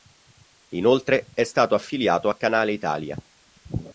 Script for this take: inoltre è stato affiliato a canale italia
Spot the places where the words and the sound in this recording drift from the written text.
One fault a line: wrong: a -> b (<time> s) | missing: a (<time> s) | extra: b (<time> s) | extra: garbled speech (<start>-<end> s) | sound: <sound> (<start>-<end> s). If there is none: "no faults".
no faults